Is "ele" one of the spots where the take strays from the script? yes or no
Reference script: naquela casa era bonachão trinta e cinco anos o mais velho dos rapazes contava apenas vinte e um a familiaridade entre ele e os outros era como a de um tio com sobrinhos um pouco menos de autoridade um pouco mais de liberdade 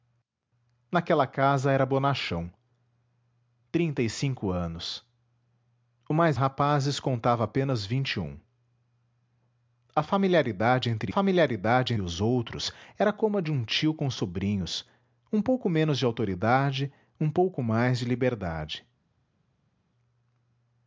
yes